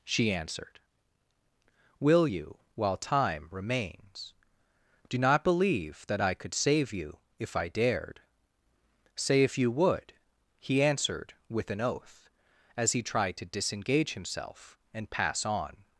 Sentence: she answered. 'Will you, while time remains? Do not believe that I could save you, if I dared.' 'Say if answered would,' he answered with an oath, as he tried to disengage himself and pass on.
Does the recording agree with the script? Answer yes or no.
no